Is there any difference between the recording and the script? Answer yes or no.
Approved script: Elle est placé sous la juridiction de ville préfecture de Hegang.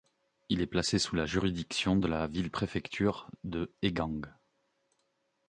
yes